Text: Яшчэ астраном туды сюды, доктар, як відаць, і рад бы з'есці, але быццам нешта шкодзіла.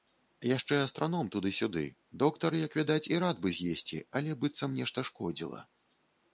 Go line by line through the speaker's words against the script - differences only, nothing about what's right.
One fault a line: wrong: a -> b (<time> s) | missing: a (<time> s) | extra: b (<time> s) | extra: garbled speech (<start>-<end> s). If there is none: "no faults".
no faults